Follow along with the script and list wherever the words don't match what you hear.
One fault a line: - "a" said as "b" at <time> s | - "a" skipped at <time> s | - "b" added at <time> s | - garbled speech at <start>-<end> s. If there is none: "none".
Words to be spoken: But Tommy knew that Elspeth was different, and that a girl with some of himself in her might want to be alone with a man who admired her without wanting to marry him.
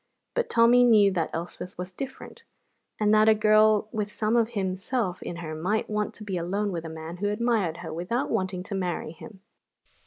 none